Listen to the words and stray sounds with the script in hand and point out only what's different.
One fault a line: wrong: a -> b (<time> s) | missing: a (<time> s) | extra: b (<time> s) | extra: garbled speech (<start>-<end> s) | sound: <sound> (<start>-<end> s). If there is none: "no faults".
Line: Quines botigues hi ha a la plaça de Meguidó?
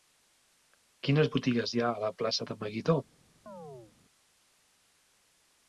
sound: chirp (3.5-3.9 s)